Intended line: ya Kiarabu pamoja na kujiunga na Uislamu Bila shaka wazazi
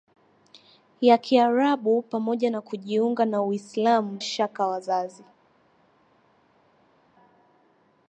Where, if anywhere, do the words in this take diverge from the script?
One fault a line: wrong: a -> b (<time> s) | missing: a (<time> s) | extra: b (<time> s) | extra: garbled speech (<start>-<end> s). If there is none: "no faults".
missing: Bila (4.2 s)